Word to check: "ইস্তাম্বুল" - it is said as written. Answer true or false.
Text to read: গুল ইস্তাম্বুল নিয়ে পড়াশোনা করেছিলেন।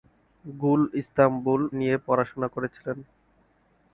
true